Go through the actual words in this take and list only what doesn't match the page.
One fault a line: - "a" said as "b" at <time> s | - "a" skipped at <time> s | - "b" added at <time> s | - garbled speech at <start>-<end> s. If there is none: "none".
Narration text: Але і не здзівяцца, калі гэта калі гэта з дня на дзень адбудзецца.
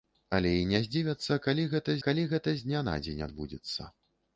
none